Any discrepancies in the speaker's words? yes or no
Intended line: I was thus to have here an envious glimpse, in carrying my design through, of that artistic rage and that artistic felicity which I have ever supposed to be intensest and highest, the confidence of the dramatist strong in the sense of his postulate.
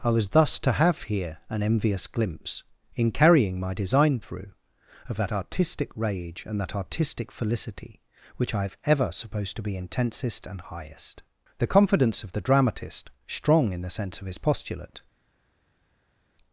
no